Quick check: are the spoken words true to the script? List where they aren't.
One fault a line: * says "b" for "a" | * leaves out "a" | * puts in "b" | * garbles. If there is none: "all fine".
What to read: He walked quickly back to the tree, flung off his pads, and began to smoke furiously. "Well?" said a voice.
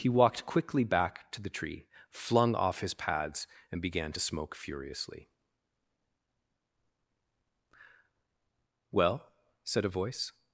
all fine